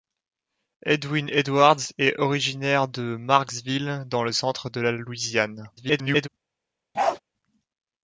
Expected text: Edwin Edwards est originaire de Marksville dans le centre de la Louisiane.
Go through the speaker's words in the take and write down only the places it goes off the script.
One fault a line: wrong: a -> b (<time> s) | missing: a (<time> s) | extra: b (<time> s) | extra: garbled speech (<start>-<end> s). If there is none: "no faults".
extra: garbled speech (5.8-6.3 s)